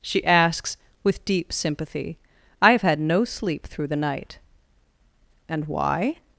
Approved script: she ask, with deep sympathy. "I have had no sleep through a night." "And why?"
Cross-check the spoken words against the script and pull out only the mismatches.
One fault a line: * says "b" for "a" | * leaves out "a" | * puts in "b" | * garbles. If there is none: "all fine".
* says "asks" for "ask"
* says "the" for "a"